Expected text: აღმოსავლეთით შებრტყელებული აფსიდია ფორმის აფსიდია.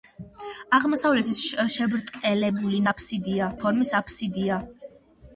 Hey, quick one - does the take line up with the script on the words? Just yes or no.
yes